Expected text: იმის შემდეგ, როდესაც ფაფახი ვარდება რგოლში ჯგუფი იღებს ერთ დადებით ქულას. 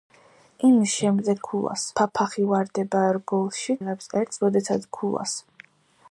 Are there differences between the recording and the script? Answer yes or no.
yes